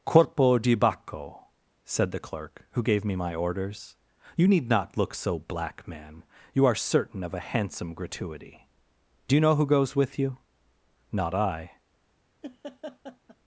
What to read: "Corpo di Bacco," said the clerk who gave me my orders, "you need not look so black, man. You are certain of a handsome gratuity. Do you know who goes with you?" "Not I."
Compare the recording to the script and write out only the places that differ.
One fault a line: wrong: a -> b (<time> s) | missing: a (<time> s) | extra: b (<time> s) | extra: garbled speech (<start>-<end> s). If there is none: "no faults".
no faults